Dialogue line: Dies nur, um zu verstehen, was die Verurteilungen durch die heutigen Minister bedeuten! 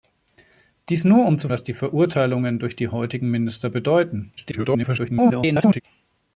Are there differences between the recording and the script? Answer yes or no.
yes